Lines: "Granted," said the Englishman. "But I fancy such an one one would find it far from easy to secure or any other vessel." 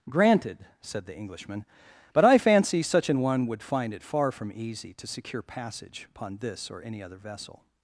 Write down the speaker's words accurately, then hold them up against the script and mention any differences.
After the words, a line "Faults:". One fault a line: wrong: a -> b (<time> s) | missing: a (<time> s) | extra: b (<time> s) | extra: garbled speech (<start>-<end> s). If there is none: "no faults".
"Granted," said the Englishman. "But I fancy such an one would find it far from easy to secure passage upon this or any other vessel."
Faults:
missing: one (3.5 s)
extra: passage upon this (5.4 s)